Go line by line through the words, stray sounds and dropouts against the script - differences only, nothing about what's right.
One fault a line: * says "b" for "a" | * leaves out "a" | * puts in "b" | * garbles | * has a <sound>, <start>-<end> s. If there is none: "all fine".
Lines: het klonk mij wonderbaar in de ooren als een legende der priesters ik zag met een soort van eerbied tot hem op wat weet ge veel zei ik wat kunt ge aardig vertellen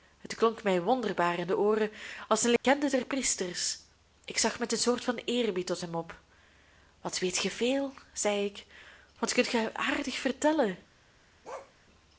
* has a dropout, 2.6-2.6 s
* has a bark, 11.4-11.7 s